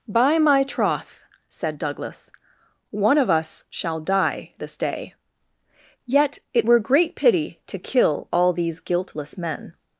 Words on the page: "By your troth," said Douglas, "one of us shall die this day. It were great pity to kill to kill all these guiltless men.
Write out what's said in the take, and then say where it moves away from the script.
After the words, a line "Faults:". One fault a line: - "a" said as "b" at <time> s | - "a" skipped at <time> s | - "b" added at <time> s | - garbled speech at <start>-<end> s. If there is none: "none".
"By my troth," said Douglas, "one of us shall die this day. Yet it were great pity to kill all these guiltless men.
Faults:
- "your" said as "my" at 0.4 s
- "Yet" added at 6.1 s
- "to kill" skipped at 8.3 s